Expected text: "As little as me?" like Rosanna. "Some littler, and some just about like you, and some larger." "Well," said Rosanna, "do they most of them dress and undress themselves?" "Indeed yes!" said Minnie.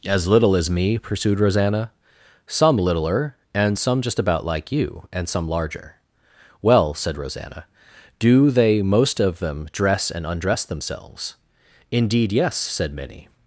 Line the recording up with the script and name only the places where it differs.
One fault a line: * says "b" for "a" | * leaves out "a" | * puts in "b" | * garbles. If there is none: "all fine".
* says "pursued" for "like"